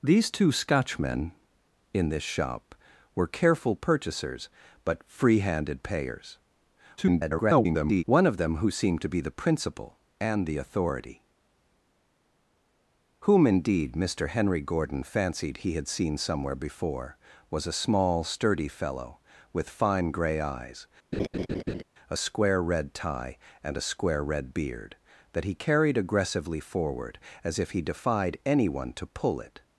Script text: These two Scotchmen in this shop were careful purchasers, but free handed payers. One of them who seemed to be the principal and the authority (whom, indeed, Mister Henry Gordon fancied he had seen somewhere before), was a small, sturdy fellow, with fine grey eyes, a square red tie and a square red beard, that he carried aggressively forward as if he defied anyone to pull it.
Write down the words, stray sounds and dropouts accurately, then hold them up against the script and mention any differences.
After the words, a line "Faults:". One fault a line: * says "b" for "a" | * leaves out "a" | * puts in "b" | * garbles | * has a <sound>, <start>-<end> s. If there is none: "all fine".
These two Scotchmen in this shop were careful purchasers, but free handed payers. [garbled] One of them who seemed to be the principal and the authority (whom, indeed, Mister Henry Gordon fancied he had seen somewhere before), was a small, sturdy fellow, with fine grey eyes, a square red tie and a square red beard, that he carried aggressively forward as if he defied anyone to pull it.
Faults:
* garbles
* has a laugh, 21.1-21.8 s